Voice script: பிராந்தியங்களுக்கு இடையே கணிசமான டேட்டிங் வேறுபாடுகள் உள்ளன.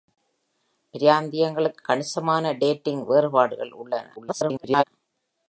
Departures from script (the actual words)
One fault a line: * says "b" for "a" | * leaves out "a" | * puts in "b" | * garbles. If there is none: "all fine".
* leaves out "இடையே"
* garbles